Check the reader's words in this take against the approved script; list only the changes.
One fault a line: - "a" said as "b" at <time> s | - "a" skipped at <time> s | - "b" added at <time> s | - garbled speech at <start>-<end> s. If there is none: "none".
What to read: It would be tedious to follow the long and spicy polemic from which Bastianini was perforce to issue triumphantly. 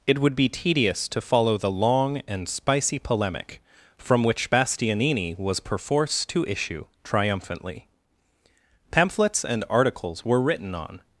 - "Pamphlets and articles were written on" added at 8.9 s